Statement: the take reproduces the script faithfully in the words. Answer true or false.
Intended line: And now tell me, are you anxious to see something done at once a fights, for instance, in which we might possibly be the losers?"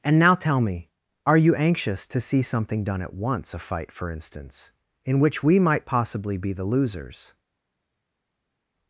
false